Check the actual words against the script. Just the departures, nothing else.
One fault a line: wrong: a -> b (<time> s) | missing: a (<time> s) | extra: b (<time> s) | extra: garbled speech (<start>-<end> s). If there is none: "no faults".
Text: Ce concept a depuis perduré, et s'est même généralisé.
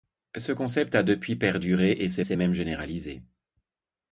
extra: s'est (2.2 s)